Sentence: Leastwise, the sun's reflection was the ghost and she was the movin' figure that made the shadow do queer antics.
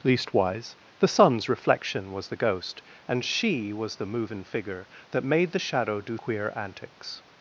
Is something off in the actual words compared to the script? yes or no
no